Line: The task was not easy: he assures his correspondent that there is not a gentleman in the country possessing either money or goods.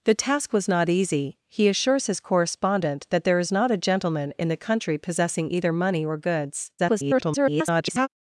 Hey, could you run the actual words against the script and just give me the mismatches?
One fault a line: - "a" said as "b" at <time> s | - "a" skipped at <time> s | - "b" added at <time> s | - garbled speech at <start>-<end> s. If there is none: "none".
- garbled speech at 6.8-8.1 s